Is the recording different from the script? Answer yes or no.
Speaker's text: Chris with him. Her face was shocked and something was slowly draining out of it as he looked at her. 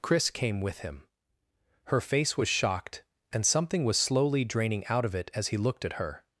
yes